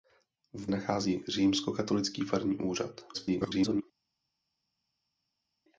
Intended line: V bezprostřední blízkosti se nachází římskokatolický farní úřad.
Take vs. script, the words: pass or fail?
fail